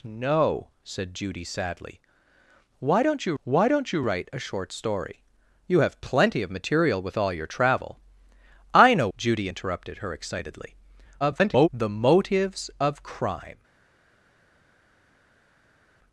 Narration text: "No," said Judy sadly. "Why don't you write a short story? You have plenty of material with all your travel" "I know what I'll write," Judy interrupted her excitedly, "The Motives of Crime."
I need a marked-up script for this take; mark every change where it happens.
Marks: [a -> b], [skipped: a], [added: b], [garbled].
"No," said Judy sadly. "Why don't you [added: why don't you] write a short story? You have plenty of material with all your travel" "I know [skipped: what I'll write,"] Judy interrupted her excitedly, [garbled] "The Motives of Crime."